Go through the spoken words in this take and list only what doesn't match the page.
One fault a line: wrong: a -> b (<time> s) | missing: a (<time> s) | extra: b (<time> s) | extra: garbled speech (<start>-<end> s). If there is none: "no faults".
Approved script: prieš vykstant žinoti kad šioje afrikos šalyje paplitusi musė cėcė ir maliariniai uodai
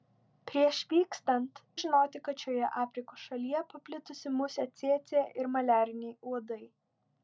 no faults